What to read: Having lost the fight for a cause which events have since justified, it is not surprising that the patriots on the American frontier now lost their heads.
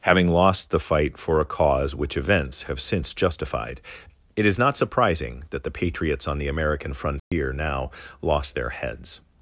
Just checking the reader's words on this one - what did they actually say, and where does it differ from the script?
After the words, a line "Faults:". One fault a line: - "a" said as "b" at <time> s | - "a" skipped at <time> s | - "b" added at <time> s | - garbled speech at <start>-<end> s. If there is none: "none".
Having lost the fight for a cause which events have since justified, it is not surprising that the patriots on the American frontier now lost their heads.
Faults:
none